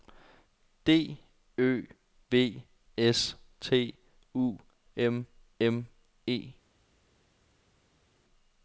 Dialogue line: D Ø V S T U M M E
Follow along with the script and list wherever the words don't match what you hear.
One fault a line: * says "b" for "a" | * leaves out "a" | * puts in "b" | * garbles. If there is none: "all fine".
all fine